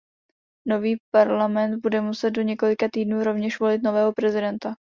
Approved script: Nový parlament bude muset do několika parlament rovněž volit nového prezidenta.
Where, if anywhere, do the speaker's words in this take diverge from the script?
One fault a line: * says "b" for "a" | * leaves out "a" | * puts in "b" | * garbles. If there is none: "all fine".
* says "týdnů" for "parlament"